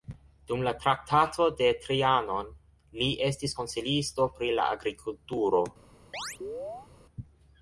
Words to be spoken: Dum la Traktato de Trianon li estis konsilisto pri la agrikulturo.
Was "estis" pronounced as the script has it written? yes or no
yes